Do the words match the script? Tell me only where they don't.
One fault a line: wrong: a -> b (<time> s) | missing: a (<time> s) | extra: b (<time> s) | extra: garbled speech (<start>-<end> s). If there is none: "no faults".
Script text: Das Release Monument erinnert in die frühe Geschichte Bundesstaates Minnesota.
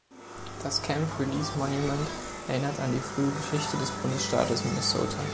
extra: Camp (0.8 s)
wrong: in -> an (2.8 s)
extra: des (3.8 s)